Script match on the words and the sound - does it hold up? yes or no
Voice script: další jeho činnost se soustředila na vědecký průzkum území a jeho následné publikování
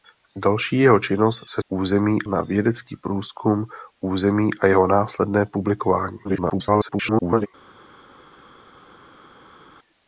no